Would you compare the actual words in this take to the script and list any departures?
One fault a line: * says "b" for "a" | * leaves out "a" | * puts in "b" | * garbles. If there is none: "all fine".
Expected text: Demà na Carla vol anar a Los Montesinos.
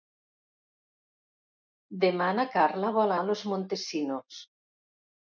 * leaves out "anar"